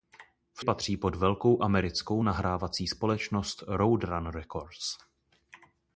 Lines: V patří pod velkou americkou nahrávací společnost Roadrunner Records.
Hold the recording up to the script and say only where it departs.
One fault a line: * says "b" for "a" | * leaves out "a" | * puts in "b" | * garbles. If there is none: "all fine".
all fine